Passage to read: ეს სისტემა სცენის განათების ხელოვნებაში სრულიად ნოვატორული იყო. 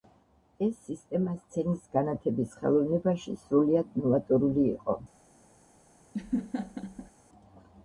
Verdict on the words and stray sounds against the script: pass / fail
fail